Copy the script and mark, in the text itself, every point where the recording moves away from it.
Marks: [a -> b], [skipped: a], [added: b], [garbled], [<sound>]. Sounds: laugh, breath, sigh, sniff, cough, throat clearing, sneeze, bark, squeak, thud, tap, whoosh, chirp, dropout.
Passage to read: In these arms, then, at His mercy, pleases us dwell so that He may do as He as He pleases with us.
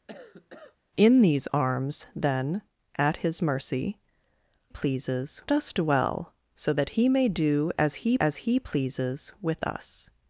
[cough] In these arms, then, at His mercy, pleases us dwell so that He may do as He as He pleases with us.